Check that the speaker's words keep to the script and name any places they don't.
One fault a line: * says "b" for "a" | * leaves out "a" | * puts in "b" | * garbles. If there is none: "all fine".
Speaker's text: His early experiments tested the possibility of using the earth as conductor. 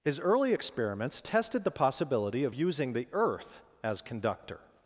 all fine